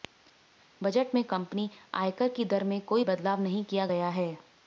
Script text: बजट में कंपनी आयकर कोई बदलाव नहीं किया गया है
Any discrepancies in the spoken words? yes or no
yes